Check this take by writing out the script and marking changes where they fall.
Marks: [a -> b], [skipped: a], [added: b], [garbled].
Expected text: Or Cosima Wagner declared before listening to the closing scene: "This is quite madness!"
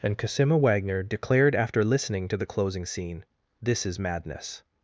[Or -> And] Cosima Wagner declared [before -> after] listening to the closing scene: "This is [skipped: quite] madness!"